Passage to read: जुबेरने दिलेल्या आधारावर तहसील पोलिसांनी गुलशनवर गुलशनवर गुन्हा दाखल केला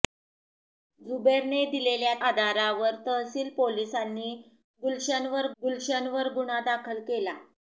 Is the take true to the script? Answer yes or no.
yes